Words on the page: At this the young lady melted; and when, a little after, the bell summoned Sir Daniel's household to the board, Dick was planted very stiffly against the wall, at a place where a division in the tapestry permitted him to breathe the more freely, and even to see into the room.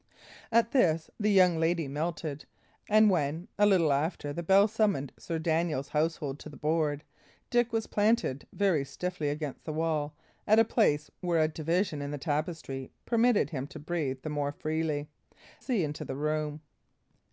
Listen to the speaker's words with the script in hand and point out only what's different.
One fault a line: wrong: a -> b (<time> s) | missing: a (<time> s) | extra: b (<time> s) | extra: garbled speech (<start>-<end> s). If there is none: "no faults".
missing: and even to (15.1 s)